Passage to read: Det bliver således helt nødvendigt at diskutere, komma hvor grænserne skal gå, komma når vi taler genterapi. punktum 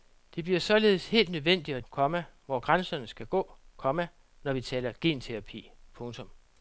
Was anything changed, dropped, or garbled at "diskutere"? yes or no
yes